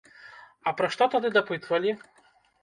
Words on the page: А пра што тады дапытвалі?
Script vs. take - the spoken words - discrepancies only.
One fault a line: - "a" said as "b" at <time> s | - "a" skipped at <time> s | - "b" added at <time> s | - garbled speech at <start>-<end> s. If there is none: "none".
none